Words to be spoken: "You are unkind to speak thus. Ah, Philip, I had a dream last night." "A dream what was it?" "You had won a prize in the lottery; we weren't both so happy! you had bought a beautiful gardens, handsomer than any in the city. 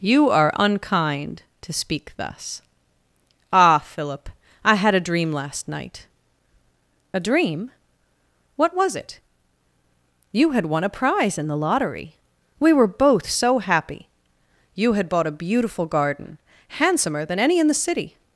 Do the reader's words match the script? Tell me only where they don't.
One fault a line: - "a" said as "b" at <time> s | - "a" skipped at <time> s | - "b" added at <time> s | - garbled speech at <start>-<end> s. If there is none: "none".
- "weren't" said as "were" at 12.7 s
- "gardens" said as "garden" at 15.8 s